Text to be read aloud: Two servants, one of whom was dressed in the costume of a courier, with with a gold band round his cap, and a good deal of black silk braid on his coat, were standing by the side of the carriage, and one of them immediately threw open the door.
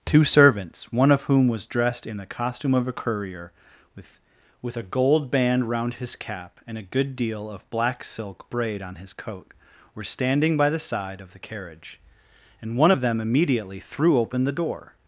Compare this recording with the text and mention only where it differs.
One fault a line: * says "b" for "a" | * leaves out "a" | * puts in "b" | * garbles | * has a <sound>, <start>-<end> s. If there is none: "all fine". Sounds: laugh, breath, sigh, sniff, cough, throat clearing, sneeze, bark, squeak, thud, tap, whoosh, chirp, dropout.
all fine